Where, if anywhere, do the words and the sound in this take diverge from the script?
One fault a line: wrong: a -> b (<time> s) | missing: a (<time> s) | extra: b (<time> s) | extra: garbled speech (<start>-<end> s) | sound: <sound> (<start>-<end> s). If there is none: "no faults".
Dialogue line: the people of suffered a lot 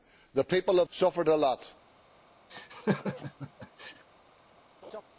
sound: laugh (2.5-4.0 s)
sound: laugh (4.8-5.0 s)